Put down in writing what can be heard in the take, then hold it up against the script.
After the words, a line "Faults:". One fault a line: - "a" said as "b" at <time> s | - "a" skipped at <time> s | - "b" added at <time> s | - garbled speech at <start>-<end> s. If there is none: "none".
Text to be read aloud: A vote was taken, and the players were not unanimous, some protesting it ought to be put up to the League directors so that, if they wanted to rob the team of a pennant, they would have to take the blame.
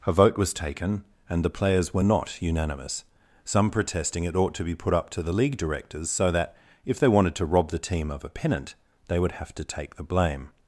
A vote was taken, and the players were not unanimous, some protesting it ought to be put up to the League directors so that, if they wanted to rob the team of a pennant, they would have to take the blame.
Faults:
none